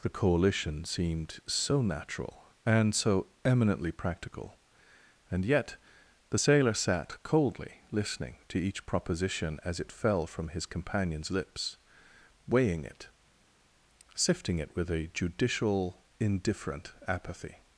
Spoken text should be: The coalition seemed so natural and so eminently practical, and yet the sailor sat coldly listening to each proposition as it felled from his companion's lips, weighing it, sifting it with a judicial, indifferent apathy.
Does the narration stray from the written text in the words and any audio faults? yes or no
yes